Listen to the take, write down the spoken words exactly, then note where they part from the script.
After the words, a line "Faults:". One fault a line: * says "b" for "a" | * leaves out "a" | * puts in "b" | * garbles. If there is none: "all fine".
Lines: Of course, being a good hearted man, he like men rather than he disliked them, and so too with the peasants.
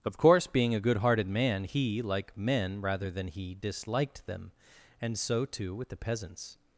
Of course, being a good hearted man, he like men rather than he disliked them, and so too with the peasants.
Faults:
all fine